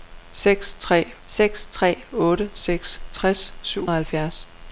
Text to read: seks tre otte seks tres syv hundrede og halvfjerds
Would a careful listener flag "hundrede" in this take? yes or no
yes